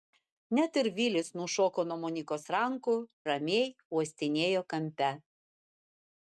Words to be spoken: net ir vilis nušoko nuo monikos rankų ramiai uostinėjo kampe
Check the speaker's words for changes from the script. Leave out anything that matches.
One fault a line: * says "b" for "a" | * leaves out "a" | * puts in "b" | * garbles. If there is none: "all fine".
all fine